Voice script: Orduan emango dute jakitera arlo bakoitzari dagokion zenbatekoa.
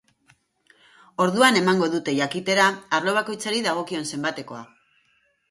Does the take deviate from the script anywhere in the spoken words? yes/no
no